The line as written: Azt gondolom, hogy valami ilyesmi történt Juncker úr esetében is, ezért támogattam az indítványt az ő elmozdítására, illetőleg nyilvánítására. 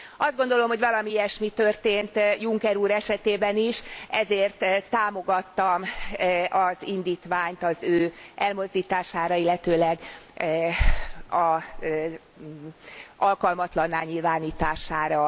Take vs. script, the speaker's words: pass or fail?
fail